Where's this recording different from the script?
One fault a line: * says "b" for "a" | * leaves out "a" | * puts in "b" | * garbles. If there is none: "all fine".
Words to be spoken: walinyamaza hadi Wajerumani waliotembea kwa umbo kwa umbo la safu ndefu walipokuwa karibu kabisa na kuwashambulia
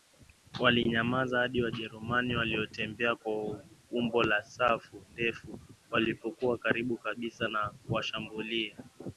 * leaves out "kwa umbo"